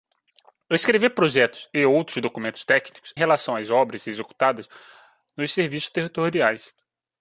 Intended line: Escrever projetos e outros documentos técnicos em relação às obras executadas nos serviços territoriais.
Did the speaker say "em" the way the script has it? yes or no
no